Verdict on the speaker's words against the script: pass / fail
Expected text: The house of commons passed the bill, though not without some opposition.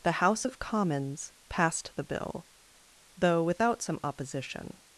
fail